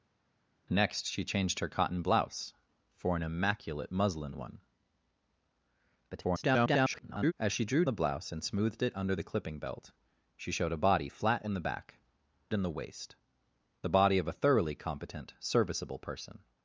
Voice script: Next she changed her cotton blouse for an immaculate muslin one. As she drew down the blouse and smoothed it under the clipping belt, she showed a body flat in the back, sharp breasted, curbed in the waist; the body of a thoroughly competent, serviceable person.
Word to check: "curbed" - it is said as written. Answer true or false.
false